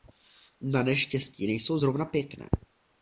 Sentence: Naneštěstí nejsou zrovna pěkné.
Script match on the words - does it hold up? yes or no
yes